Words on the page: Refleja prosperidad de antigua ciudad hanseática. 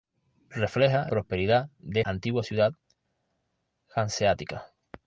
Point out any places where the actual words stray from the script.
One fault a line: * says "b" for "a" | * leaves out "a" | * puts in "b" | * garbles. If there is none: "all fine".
all fine